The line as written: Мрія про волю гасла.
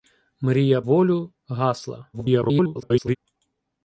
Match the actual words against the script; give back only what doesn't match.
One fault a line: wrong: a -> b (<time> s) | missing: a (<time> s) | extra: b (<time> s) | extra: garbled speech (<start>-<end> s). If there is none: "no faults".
missing: про (0.8 s)
extra: garbled speech (2.1-3.2 s)